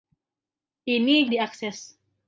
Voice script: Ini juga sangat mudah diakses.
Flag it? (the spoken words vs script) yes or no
yes